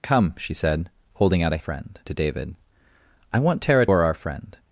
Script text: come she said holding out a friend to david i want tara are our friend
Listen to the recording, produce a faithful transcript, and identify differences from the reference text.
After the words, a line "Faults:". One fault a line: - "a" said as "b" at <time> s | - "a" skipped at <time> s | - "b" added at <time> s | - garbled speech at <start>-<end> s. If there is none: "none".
come she said holding out a friend to david i want tara are our friend
Faults:
none